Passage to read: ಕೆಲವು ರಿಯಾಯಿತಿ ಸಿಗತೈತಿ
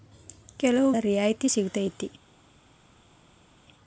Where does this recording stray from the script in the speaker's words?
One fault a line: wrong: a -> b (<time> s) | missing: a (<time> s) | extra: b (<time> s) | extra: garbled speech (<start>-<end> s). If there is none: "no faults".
no faults